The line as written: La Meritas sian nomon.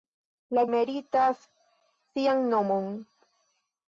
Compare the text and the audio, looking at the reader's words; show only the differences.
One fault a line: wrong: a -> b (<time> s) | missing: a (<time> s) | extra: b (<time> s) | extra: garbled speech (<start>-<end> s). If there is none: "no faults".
no faults